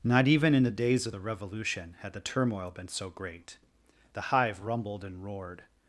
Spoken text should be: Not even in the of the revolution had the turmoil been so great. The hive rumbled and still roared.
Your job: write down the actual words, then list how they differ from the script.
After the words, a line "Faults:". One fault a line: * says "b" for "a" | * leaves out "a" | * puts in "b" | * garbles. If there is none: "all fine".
Not even in the days of the revolution had the turmoil been so great. The hive rumbled and roared.
Faults:
* puts in "days"
* leaves out "still"